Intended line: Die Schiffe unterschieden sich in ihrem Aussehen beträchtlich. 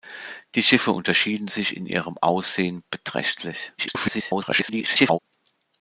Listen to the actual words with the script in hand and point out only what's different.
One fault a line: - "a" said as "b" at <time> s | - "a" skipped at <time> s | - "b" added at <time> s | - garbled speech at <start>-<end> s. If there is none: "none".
- garbled speech at 3.8-5.2 s